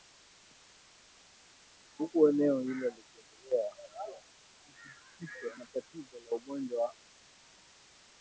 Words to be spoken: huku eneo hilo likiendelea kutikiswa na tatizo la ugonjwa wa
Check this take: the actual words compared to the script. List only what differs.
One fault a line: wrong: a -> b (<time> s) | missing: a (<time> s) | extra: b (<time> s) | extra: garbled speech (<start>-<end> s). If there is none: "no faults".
no faults